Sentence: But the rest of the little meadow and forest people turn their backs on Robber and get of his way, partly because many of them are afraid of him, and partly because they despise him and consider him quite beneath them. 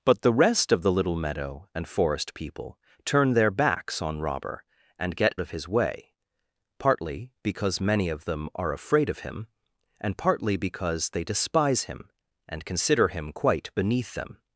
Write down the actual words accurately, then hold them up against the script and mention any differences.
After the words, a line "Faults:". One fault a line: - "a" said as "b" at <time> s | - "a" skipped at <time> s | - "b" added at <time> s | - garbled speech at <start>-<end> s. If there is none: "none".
But the rest of the little meadow and forest people turn their backs on Robber and get of his way, partly because many of them are afraid of him, and partly because they despise him and consider him quite beneath them.
Faults:
none